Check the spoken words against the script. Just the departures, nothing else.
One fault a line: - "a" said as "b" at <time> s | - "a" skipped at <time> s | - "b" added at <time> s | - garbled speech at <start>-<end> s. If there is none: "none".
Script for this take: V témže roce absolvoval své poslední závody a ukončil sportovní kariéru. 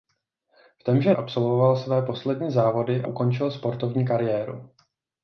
- "roce" skipped at 1.1 s
- "a" skipped at 3.0 s